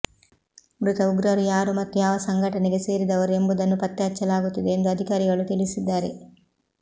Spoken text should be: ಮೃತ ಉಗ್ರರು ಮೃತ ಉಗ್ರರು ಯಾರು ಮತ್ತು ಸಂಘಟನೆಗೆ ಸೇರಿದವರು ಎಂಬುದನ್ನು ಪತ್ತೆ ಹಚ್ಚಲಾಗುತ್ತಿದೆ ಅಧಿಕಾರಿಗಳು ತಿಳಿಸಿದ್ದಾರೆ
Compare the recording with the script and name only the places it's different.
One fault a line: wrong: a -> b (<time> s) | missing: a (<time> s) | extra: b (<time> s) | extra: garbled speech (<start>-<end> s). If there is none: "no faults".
missing: ಮೃತ ಉಗ್ರರು (1.4 s)
extra: ಯಾವ (2.0 s)
extra: ಎಂದು (4.7 s)